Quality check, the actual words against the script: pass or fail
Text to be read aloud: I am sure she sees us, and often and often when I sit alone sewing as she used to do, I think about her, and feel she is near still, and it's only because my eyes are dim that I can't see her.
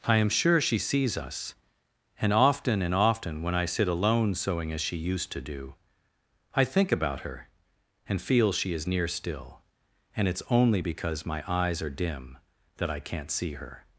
pass